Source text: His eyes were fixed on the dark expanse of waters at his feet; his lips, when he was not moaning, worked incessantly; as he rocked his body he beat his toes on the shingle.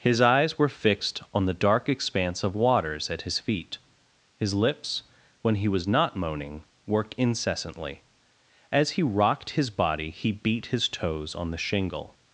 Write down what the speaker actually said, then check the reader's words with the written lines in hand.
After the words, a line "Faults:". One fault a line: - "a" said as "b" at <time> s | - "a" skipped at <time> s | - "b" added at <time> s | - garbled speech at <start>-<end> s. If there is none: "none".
His eyes were fixed on the dark expanse of waters at his feet; his lips, when he was not moaning, worked incessantly; as he rocked his body he beat his toes on the shingle.
Faults:
none